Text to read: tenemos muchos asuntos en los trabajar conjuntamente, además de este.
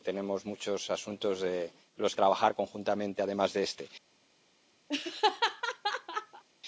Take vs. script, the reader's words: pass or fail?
pass